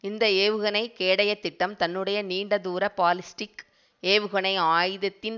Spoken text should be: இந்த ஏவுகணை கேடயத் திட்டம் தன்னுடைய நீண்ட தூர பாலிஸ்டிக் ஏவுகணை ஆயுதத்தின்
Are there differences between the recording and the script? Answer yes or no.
no